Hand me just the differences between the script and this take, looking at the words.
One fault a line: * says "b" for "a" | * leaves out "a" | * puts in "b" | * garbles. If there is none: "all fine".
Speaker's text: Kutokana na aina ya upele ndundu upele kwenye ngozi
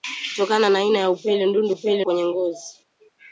all fine